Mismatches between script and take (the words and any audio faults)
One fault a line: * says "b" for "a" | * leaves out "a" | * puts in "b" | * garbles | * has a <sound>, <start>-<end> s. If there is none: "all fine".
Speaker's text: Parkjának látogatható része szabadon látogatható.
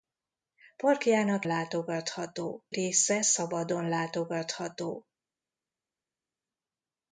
all fine